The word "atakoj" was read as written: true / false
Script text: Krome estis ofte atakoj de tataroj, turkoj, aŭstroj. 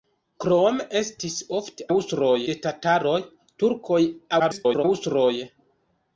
false